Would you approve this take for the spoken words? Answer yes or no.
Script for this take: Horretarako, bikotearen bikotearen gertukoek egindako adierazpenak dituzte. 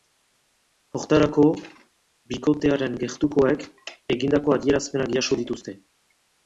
no